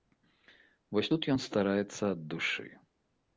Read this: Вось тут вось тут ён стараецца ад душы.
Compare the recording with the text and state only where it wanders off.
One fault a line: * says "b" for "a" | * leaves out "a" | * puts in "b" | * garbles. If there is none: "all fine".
* leaves out "вось тут"